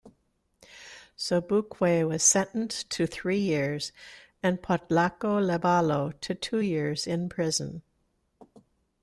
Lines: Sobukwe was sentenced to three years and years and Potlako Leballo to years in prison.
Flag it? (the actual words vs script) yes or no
yes